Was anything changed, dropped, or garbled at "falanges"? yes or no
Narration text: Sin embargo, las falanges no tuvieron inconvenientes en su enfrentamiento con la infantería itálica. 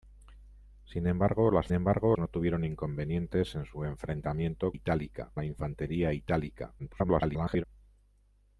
yes